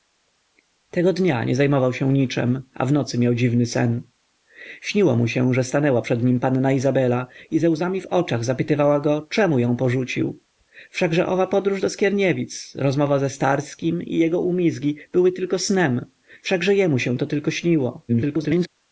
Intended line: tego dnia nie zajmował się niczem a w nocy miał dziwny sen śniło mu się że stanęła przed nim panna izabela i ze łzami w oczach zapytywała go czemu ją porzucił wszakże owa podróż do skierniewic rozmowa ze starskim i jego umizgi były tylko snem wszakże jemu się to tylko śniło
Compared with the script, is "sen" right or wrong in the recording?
right